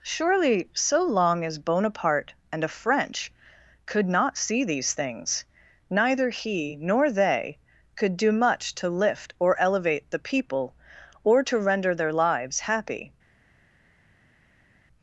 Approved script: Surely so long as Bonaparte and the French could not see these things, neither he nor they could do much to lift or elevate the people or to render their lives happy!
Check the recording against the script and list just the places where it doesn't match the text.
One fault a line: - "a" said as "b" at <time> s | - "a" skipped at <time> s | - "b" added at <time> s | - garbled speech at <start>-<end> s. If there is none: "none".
- "the" said as "a" at 2.6 s